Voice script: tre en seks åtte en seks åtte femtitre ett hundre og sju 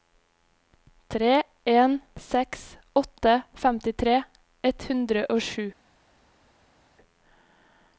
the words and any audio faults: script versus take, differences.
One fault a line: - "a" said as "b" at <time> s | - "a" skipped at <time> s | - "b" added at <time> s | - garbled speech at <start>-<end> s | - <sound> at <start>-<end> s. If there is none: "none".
- "en seks åtte" skipped at 3.4 s